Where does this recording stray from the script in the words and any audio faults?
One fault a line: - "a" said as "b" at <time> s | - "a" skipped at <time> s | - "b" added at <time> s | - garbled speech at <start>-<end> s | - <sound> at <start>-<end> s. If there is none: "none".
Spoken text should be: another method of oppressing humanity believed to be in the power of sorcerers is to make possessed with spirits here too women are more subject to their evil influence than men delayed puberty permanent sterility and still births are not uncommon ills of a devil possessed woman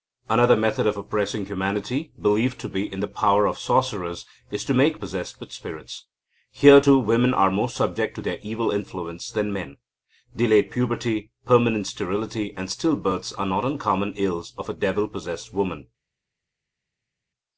none